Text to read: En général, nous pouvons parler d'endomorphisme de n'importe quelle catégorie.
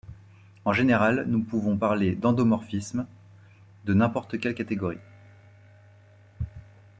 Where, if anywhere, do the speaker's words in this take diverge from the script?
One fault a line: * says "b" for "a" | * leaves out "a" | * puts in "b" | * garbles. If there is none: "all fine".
all fine